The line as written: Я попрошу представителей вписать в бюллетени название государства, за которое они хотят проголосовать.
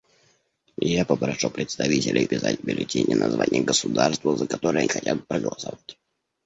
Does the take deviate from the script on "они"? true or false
true